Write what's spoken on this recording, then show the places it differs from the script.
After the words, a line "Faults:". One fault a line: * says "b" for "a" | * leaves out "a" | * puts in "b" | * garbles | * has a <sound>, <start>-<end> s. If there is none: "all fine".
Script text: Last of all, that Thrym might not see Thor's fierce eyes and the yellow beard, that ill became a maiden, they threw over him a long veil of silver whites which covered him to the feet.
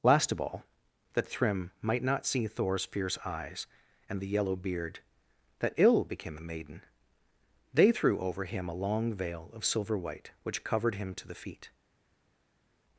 Last of all, that Thrym might not see Thor's fierce eyes and the yellow beard, that ill became a maiden, they threw over him a long veil of silver white which covered him to the feet.
Faults:
* says "white" for "whites"